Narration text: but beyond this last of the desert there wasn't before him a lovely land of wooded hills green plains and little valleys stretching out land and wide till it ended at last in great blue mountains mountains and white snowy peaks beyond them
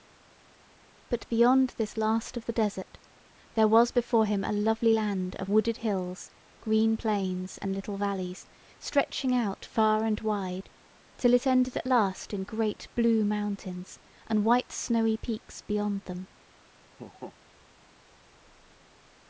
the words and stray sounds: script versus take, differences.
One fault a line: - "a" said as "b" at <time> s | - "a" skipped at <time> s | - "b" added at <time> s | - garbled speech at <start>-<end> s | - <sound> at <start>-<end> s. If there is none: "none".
- "wasn't" said as "was" at 3.7 s
- "land" said as "far" at 9.6 s
- "mountains" skipped at 14.0 s
- laugh at 16.9-17.4 s